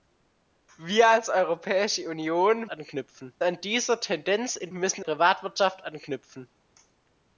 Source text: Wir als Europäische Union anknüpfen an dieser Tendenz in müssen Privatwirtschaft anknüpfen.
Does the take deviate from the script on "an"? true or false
false